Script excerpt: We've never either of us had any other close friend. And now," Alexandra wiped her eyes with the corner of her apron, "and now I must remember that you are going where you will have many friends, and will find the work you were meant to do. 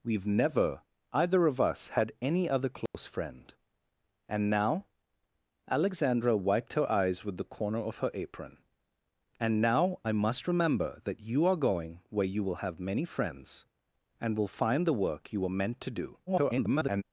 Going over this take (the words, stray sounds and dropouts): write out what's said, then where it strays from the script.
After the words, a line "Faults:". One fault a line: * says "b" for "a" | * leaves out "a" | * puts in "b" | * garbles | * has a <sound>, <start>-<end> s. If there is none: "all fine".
We've never either of us had any other close friend. And now," Alexandra wiped her eyes with the corner of her apron, "and now I must remember that you are going where you will have many friends, and will find the work you were meant to do. [garbled]
Faults:
* has a dropout, 2.9-2.9 s
* garbles